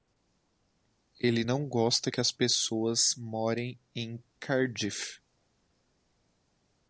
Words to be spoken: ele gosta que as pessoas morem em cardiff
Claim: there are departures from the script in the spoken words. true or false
true